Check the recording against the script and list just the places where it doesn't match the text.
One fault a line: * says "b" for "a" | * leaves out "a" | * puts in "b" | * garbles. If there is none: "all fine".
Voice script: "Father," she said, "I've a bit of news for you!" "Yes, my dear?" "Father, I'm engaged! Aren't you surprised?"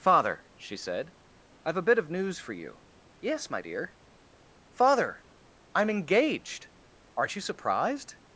all fine